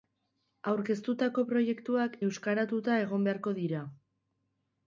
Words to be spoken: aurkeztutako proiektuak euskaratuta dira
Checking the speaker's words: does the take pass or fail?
fail